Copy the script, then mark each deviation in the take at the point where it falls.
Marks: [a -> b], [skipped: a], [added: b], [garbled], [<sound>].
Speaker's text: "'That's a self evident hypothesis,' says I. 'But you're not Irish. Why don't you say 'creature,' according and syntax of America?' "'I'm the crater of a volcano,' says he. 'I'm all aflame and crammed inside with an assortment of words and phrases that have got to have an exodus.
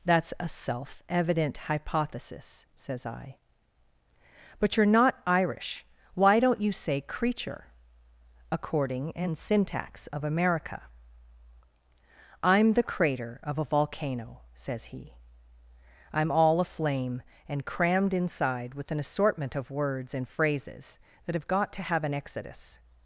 "'That's a self evident hypothesis,' says I. 'But you're not Irish. Why don't you say 'creature,' according and syntax of America?' "'I'm the crater of a volcano,' says he. 'I'm all aflame and crammed inside with an assortment of words and phrases that have got to have an exodus.